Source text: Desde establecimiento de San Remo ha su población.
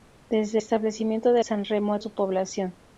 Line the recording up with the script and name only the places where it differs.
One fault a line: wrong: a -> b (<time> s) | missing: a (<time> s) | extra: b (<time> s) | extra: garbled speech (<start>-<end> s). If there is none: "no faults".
no faults